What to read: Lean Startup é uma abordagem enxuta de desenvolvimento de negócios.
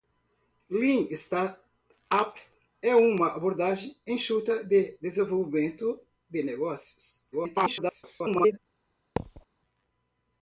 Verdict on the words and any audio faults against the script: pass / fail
fail